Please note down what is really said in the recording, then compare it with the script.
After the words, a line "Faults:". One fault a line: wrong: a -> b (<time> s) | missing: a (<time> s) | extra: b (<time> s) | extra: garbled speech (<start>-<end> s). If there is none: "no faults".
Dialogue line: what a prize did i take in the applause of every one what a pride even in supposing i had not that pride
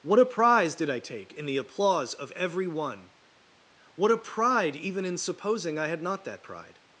what a prize did i take in the applause of every one what a pride even in supposing i had not that pride
Faults:
no faults